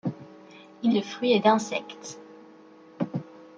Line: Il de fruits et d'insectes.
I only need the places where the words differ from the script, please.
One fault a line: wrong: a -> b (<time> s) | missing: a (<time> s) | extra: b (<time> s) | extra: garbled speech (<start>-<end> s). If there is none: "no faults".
no faults